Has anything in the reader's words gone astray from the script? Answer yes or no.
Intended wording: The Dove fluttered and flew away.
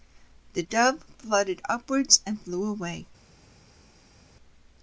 yes